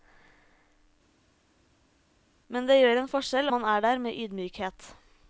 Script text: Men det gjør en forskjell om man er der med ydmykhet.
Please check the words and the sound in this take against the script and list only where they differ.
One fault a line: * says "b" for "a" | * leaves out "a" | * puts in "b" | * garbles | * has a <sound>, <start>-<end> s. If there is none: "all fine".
* leaves out "om"